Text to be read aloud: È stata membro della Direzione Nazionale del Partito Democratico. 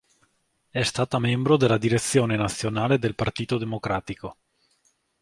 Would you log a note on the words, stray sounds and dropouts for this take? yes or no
no